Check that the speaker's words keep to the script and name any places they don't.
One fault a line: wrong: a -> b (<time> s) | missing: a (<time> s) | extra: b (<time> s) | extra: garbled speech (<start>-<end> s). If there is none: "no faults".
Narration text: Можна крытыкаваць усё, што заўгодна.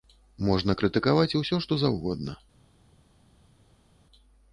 no faults